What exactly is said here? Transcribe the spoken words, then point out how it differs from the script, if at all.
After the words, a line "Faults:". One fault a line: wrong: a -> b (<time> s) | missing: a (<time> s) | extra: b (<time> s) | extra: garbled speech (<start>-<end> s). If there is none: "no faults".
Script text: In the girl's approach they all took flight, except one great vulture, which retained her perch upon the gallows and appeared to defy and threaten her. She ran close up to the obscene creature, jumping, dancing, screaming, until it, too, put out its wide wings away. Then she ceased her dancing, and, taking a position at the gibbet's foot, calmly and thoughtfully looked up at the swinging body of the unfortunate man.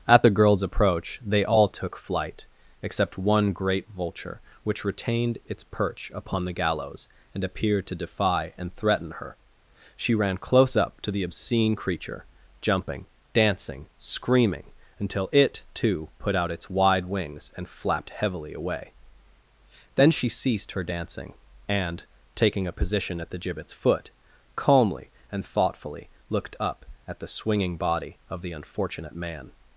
At the girl's approach they all took flight, except one great vulture, which retained its perch upon the gallows and appeared to defy and threaten her. She ran close up to the obscene creature, jumping, dancing, screaming, until it, too, put out its wide wings and flapped heavily away. Then she ceased her dancing, and, taking a position at the gibbet's foot, calmly and thoughtfully looked up at the swinging body of the unfortunate man.
Faults:
wrong: In -> At (0.1 s)
wrong: her -> its (5.4 s)
extra: and flapped heavily (17.6 s)